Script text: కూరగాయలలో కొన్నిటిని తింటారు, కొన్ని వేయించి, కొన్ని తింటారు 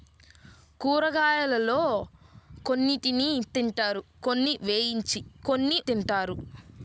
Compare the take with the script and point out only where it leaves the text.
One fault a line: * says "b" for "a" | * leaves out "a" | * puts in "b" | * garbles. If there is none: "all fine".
all fine